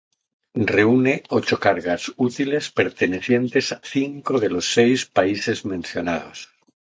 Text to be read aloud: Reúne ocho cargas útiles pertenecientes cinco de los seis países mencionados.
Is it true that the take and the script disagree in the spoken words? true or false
false